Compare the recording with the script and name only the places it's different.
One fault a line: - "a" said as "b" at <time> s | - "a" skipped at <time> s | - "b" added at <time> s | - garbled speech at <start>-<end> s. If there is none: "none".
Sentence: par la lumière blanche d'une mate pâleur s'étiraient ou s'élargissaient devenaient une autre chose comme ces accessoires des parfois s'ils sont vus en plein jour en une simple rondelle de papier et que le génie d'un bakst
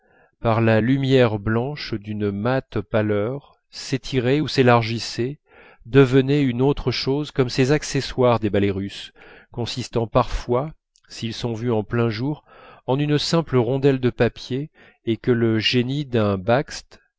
- "ballets russes consistant" added at 8.5 s